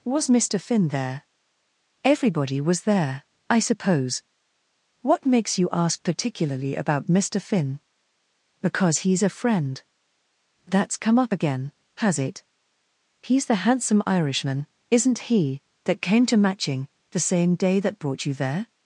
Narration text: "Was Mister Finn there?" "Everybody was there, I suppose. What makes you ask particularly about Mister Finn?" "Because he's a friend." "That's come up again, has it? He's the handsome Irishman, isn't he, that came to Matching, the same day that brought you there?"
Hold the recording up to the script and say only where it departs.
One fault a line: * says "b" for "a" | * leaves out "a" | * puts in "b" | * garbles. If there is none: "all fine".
all fine